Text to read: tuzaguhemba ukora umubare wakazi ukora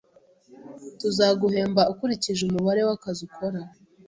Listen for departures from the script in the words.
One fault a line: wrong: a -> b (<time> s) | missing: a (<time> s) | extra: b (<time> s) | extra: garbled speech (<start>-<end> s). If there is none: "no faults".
wrong: ukora -> ukurikije (1.9 s)